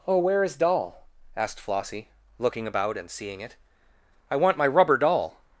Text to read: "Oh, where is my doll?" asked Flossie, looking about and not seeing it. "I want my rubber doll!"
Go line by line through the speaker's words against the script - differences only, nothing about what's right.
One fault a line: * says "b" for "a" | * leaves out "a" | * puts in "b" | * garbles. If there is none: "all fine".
* leaves out "my"
* leaves out "not"